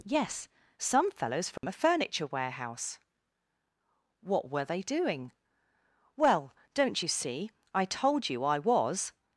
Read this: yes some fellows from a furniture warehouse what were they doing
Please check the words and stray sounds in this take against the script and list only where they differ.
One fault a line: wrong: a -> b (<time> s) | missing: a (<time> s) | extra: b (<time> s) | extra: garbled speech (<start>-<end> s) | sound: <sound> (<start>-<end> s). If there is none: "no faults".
sound: dropout (1.6-1.6 s)
extra: well don't you see i told you i was (6.2 s)